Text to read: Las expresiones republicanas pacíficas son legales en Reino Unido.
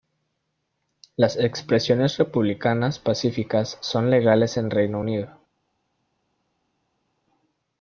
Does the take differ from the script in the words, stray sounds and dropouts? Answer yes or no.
no